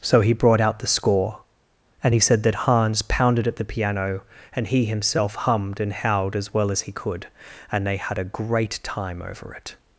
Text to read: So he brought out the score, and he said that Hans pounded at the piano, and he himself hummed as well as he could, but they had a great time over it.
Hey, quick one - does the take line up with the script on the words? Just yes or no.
no